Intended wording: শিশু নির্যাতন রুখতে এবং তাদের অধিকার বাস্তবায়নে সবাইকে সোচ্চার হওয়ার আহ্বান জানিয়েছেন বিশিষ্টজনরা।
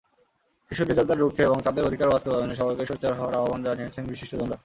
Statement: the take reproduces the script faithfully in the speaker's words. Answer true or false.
true